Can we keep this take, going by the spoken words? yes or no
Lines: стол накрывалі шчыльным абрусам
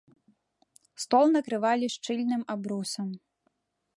yes